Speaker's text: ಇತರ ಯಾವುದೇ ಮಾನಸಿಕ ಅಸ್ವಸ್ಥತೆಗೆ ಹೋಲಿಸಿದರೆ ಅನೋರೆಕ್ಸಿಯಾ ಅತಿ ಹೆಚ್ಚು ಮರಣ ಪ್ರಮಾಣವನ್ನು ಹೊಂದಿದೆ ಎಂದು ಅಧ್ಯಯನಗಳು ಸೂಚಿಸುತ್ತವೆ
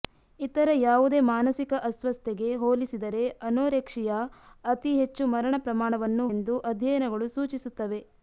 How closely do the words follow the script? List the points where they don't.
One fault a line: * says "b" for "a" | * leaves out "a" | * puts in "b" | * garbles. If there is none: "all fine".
* leaves out "ಹೊಂದಿದೆ"